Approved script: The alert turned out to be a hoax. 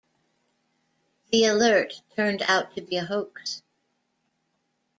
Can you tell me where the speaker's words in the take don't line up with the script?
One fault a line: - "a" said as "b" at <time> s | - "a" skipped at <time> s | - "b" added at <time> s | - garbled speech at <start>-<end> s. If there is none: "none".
none